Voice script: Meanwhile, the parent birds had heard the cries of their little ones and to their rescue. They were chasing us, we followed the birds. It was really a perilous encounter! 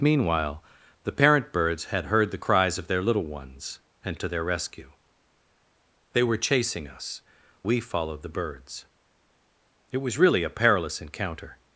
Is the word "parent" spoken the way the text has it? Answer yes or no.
yes